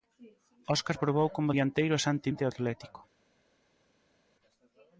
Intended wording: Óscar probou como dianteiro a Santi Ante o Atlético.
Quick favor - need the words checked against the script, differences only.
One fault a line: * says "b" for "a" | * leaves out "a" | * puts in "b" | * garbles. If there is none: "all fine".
all fine